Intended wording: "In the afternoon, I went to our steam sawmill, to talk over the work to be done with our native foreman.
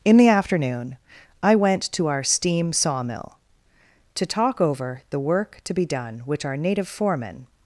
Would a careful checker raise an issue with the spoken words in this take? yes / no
yes